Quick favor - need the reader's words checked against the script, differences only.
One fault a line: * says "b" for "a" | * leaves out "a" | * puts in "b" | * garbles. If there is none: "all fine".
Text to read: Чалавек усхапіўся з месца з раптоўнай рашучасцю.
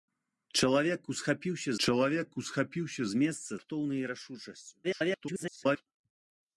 * puts in "чалавек усхапіўся"
* leaves out "з"
* garbles